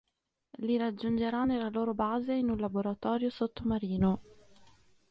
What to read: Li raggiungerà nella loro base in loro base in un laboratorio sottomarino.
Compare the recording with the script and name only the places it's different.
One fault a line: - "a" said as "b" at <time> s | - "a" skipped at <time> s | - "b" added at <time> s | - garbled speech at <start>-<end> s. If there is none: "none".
- "loro base in" skipped at 2.5 s